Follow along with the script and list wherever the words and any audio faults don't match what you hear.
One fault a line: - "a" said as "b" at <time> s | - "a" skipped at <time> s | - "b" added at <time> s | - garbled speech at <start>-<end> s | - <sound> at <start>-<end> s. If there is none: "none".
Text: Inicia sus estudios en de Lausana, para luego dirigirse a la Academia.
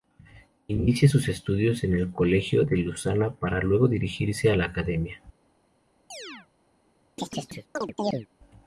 - "el Colegio" added at 1.9 s
- chirp at 6.1-6.5 s
- chirp at 7.2-8.3 s